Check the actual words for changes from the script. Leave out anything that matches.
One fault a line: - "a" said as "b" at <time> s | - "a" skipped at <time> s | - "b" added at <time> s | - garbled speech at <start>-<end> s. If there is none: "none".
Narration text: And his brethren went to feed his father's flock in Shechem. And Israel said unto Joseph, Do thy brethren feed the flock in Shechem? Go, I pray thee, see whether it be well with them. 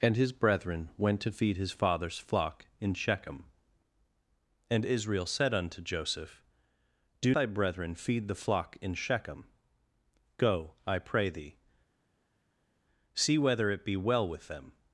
none